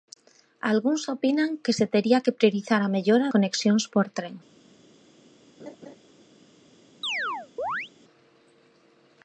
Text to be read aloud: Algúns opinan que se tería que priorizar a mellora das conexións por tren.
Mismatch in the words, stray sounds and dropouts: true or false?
true